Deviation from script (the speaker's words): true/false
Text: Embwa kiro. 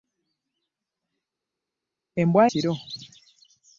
false